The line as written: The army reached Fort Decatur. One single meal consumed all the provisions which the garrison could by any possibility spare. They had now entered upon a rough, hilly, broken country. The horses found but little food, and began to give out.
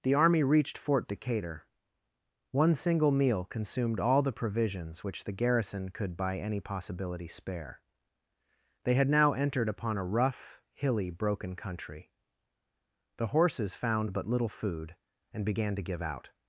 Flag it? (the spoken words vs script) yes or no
no